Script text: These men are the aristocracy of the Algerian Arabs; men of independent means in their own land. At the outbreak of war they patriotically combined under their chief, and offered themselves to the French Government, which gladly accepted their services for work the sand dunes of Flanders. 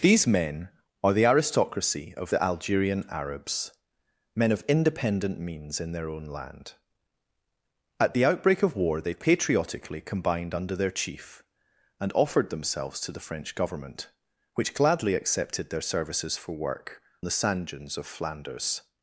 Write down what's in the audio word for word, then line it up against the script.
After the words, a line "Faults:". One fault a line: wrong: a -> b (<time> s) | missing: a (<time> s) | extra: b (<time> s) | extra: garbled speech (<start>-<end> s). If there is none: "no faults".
These men are the aristocracy of the Algerian Arabs; men of independent means in their own land. At the outbreak of war they patriotically combined under their chief, and offered themselves to the French Government, which gladly accepted their services for work the sand dunes of Flanders.
Faults:
no faults